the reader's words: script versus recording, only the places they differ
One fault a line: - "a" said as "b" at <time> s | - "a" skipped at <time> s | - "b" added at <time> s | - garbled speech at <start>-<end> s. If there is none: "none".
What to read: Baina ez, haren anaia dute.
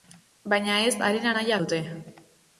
none